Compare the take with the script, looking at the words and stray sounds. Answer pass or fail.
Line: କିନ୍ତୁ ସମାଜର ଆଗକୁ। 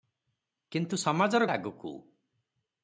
pass